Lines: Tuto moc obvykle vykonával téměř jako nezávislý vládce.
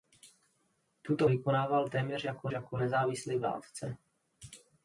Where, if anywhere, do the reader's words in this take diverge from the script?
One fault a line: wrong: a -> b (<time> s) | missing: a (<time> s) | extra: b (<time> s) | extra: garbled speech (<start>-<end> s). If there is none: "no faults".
missing: moc obvykle (1.3 s)
extra: jako (2.5 s)